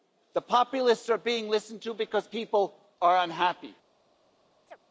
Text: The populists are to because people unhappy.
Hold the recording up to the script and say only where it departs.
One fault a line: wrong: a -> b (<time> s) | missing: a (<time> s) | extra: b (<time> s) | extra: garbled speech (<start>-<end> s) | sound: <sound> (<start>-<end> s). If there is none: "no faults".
extra: being listened (1.2 s)
extra: are (3.0 s)
sound: chirp (4.7-4.8 s)